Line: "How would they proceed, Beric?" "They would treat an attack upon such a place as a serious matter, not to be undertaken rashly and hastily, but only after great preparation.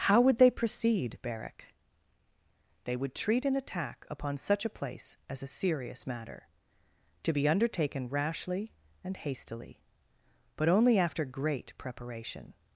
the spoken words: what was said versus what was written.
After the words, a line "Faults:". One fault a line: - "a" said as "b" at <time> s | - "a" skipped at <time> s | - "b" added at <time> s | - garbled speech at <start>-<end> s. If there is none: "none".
"How would they proceed, Beric?" "They would treat an attack upon such a place as a serious matter, to be undertaken rashly and hastily, but only after great preparation.
Faults:
- "not" skipped at 6.5 s